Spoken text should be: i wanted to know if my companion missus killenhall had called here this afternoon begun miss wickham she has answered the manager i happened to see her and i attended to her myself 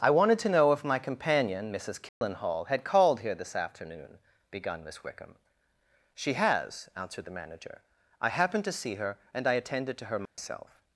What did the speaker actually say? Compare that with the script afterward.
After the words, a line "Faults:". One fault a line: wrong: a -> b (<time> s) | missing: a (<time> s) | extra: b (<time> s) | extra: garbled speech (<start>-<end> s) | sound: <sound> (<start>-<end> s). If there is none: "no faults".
i wanted to know if my companion missus killenhall had called here this afternoon begun miss wickham she has answered the manager i happened to see her and i attended to her myself
Faults:
sound: dropout (2.1-2.2 s)
sound: dropout (10.3-10.4 s)